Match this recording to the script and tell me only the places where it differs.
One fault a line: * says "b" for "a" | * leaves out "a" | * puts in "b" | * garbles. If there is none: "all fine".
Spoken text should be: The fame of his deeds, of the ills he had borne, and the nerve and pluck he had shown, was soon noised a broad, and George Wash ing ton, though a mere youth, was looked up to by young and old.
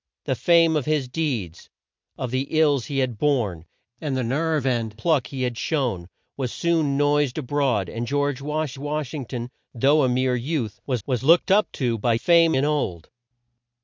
* puts in "Wash"
* puts in "was"
* says "fame" for "young"